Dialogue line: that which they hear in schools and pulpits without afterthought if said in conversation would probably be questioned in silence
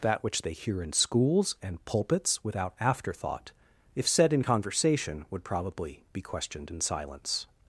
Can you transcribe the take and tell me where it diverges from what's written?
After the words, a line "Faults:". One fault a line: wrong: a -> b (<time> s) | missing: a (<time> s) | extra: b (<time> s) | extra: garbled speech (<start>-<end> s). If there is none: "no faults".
that which they hear in schools and pulpits without afterthought if said in conversation would probably be questioned in silence
Faults:
no faults